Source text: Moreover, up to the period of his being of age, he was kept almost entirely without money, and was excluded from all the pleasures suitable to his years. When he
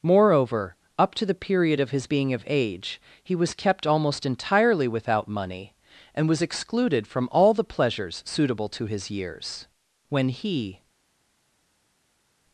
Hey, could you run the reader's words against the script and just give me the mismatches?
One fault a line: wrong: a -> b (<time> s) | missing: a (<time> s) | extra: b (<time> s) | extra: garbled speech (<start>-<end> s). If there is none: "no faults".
no faults